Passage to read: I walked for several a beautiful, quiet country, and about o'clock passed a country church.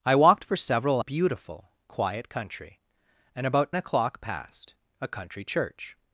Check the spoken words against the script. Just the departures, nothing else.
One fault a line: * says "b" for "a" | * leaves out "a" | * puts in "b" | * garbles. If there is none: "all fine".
all fine